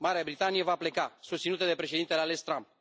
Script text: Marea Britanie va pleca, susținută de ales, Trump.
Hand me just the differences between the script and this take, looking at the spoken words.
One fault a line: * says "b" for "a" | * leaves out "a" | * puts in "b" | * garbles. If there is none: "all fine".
* puts in "președintele"